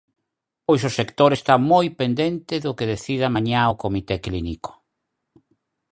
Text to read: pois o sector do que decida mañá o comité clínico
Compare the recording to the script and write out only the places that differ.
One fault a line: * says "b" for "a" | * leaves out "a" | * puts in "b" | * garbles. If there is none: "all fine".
* puts in "está moi pendente"